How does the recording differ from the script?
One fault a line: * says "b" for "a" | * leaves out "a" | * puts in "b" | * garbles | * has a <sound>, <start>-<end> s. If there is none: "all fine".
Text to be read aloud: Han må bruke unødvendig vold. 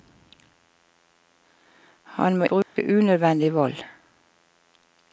* has a dropout, 2.6-2.8 s